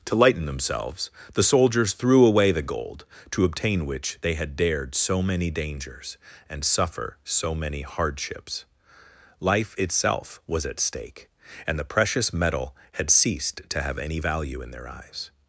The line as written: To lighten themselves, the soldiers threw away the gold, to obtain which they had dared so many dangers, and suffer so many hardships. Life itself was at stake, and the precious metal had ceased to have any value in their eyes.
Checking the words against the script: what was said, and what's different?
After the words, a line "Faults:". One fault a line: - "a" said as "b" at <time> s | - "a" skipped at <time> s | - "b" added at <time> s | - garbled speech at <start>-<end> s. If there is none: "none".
To lighten themselves, the soldiers threw away the gold, to obtain which they had dared so many dangers, and suffer so many hardships. Life itself was at stake, and the precious metal had ceased to have any value in their eyes.
Faults:
none